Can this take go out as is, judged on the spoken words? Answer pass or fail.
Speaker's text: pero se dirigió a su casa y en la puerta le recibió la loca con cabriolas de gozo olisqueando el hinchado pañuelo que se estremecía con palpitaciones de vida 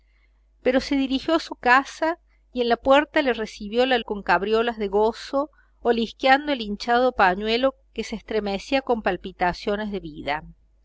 fail